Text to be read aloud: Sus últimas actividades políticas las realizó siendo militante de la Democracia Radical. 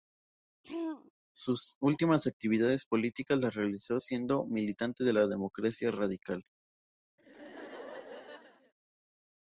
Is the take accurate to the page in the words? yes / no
yes